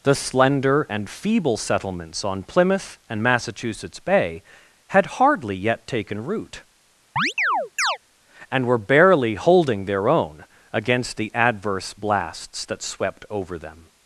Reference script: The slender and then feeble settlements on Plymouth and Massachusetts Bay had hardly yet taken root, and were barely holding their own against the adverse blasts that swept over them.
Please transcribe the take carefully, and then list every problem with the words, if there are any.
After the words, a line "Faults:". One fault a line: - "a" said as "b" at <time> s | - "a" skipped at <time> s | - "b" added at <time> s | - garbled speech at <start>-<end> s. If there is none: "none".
The slender and feeble settlements on Plymouth and Massachusetts Bay had hardly yet taken root, and were barely holding their own against the adverse blasts that swept over them.
Faults:
- "then" skipped at 1.1 s